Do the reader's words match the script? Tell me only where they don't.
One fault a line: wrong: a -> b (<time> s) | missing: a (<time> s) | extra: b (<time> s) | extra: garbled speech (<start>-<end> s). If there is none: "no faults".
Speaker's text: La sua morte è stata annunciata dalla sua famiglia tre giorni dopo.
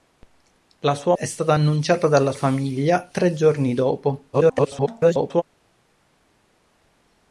missing: morte (1.1 s)
missing: sua (2.3 s)
extra: garbled speech (4.3-5.4 s)